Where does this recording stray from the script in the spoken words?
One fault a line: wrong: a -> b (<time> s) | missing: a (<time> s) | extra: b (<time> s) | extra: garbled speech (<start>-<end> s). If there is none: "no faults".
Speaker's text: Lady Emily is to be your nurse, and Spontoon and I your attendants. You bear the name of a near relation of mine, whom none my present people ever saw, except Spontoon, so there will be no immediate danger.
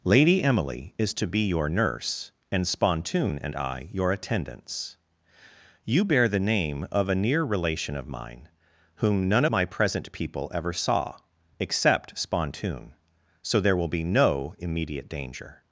no faults